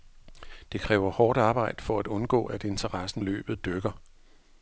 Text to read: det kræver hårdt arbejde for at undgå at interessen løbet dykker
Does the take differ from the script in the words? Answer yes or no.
no